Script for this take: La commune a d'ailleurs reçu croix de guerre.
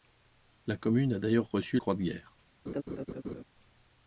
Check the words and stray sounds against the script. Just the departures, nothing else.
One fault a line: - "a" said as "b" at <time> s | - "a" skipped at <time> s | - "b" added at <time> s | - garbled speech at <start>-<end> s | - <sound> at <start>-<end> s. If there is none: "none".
- laugh at 2.7-3.4 s